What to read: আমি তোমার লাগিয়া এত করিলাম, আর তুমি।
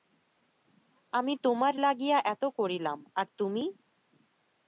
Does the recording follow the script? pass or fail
pass